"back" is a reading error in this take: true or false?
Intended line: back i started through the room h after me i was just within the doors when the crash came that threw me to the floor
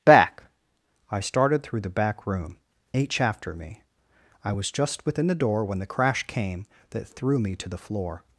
false